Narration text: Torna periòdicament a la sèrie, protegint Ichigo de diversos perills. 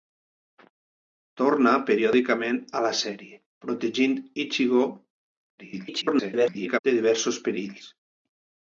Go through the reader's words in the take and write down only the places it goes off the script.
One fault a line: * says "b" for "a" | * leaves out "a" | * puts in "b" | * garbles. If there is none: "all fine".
* garbles